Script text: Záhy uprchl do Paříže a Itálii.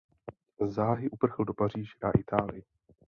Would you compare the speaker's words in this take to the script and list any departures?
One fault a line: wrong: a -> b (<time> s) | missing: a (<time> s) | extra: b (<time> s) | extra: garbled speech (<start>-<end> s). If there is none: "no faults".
no faults